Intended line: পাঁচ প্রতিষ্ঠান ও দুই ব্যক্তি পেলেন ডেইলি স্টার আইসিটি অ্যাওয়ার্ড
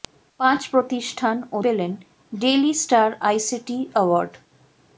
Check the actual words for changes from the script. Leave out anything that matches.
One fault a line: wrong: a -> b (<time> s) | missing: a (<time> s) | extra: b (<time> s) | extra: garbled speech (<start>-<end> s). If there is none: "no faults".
missing: দুই ব্যক্তি (1.6 s)